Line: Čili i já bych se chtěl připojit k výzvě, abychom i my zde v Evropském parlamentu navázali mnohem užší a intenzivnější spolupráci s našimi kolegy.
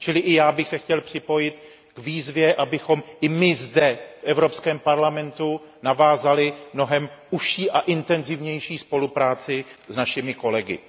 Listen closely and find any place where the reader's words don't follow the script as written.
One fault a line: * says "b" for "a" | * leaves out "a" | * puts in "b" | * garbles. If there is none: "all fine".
all fine